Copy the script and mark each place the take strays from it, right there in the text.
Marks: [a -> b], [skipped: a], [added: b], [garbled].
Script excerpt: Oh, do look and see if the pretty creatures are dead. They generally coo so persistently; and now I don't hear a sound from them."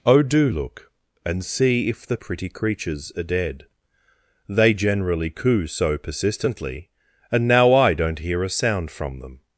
Oh, do look and see if the pretty creatures are dead. They generally coo so persistently; and now I don't hear a sound from them."